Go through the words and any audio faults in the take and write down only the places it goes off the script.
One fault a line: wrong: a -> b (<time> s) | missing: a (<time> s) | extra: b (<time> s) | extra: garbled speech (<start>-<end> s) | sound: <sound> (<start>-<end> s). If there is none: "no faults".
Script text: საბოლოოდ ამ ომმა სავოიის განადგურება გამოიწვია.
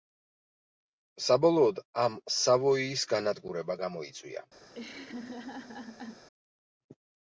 missing: ომმა (2.1 s)
sound: laugh (4.7-6.3 s)